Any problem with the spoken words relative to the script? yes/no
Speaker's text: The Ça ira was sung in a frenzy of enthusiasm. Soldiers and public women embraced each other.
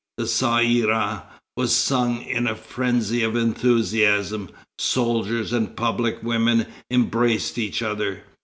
no